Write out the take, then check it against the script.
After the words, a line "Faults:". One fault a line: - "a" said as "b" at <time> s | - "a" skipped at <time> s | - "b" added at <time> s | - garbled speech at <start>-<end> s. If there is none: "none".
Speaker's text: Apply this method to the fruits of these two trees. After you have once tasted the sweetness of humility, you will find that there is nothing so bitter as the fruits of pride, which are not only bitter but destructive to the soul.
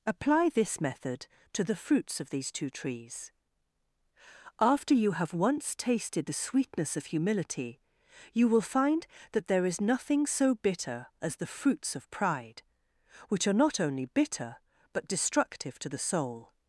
Apply this method to the fruits of these two trees. After you have once tasted the sweetness of humility, you will find that there is nothing so bitter as the fruits of pride, which are not only bitter but destructive to the soul.
Faults:
none